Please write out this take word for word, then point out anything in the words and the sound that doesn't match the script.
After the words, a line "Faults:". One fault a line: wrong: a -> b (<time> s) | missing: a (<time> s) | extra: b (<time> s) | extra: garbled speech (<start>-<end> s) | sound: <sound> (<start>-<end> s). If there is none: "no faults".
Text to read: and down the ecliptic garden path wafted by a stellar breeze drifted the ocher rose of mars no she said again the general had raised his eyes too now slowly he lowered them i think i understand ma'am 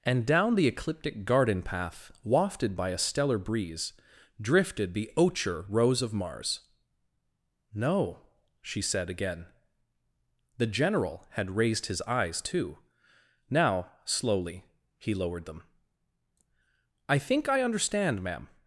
and down the ecliptic garden path wafted by a stellar breeze drifted the ocher rose of mars no she said again the general had raised his eyes too now slowly he lowered them i think i understand ma'am
Faults:
no faults